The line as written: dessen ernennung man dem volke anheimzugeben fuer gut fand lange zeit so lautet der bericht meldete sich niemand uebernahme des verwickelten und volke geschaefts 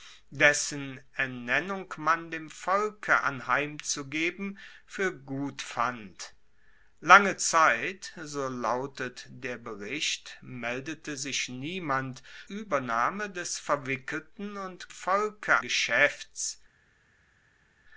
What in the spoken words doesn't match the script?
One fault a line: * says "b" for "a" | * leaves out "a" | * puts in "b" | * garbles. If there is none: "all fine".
all fine